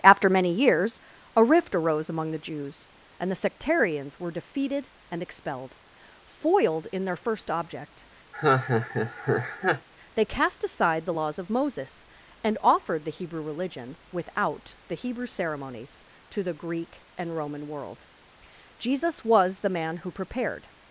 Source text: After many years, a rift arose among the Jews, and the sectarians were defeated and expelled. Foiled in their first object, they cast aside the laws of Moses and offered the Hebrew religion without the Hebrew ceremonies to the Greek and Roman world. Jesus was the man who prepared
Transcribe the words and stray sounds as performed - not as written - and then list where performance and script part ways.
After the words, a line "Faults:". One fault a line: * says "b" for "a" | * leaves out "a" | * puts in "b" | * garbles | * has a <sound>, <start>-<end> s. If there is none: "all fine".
After many years, a rift arose among the Jews, and the sectarians were defeated and expelled. Foiled in their first object, they cast aside the laws of Moses and offered the Hebrew religion without the Hebrew ceremonies to the Greek and Roman world. Jesus was the man who prepared
Faults:
* has a laugh, 8.3-9.9 s